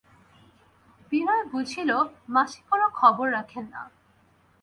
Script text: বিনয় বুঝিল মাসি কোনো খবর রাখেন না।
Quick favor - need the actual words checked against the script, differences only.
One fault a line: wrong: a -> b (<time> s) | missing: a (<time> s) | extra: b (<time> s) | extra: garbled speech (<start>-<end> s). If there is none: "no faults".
no faults